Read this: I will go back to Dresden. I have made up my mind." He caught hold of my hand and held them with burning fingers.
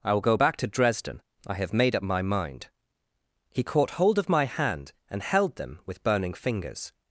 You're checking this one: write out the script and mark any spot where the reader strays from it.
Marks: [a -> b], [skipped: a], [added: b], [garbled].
I will go back to Dresden. I have made up my mind." He caught hold of my hand and held them with burning fingers.